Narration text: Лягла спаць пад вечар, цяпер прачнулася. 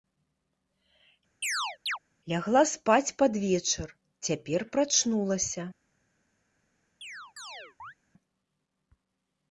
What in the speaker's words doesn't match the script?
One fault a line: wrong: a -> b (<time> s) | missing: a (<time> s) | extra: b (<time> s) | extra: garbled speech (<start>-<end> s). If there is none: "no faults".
no faults